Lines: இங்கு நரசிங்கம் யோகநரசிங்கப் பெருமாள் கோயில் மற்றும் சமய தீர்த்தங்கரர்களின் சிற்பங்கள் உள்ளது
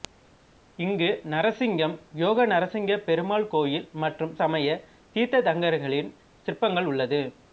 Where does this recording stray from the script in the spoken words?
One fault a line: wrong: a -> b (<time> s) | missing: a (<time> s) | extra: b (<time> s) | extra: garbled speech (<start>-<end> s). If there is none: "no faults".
no faults